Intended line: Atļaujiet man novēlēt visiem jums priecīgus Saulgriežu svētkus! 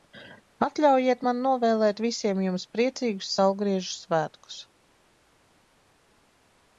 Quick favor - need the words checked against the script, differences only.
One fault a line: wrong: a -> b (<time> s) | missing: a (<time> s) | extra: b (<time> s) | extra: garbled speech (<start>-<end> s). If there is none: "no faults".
no faults